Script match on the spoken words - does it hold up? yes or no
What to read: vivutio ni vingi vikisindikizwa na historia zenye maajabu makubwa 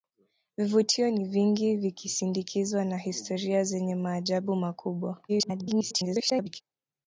no